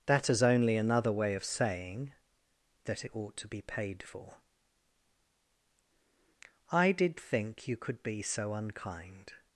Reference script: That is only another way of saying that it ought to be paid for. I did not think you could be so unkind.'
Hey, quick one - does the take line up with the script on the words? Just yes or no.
no